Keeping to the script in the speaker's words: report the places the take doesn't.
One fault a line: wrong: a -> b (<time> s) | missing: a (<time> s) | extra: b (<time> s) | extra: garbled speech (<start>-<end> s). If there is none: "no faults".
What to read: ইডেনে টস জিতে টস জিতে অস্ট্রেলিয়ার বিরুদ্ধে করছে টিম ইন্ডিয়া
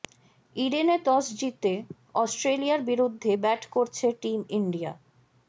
missing: টস জিতে (1.7 s)
extra: ব্যাট (3.4 s)